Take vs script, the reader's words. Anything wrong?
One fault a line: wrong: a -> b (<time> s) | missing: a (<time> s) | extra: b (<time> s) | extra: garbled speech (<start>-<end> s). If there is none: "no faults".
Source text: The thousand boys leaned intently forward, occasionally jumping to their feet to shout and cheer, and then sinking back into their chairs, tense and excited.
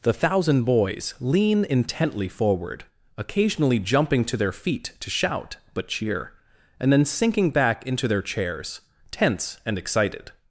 wrong: leaned -> lean (1.2 s)
wrong: and -> but (5.8 s)